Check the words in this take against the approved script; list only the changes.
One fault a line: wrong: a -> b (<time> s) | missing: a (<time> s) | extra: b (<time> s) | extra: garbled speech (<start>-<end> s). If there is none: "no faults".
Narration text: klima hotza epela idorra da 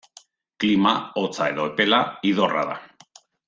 extra: edo (1.5 s)